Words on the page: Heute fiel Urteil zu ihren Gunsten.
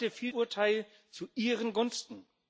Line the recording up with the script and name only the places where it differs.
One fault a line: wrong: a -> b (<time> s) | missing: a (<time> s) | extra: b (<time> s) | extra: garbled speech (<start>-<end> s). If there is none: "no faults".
no faults